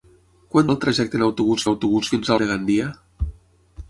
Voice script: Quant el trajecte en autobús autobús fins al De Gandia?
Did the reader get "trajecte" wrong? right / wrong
right